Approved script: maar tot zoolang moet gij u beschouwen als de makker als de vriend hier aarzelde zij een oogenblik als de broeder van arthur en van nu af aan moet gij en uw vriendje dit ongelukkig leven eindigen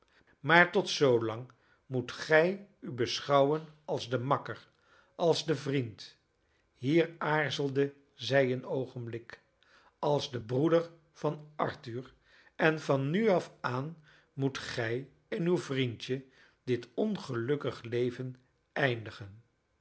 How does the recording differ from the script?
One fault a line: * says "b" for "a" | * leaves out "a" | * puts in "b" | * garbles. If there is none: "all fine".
all fine